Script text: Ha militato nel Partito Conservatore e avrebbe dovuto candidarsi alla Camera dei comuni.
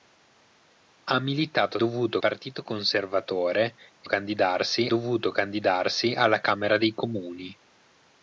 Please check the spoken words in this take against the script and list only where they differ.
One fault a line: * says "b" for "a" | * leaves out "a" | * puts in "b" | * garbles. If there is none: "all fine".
* says "dovuto" for "nel"
* says "candidarsi" for "avrebbe"